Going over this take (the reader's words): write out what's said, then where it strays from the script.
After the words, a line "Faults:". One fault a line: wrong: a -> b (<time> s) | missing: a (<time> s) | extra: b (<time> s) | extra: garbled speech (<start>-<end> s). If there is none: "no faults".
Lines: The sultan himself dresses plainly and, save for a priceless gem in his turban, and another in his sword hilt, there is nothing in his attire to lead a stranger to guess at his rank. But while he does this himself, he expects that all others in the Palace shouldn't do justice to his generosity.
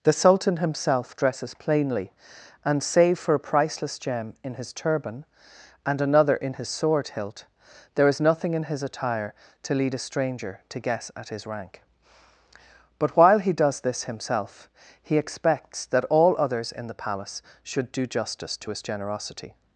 The sultan himself dresses plainly and, save for a priceless gem in his turban, and another in his sword hilt, there is nothing in his attire to lead a stranger to guess at his rank. But while he does this himself, he expects that all others in the Palace should do justice to his generosity.
Faults:
wrong: shouldn't -> should (17.6 s)